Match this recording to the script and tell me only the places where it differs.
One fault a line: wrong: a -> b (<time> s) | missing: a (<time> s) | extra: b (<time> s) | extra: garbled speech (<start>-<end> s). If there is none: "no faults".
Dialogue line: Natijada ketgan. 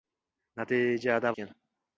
no faults